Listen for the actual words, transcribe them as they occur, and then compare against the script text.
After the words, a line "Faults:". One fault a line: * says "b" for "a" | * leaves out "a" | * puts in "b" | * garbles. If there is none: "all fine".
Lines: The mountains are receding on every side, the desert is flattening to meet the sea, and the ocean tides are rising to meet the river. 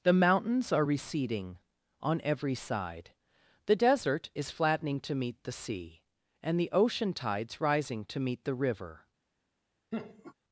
The mountains are receding on every side, the desert is flattening to meet the sea, and the ocean tides rising to meet the river.
Faults:
* leaves out "are"